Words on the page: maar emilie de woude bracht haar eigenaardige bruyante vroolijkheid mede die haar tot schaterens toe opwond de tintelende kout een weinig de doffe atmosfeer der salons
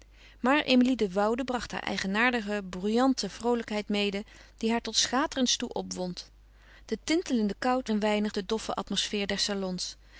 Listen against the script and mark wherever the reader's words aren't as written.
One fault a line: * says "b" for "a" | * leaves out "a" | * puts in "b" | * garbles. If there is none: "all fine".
all fine